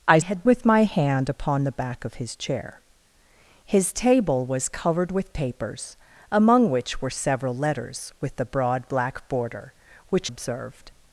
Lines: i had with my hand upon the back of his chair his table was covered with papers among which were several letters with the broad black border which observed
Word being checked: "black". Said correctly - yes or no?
yes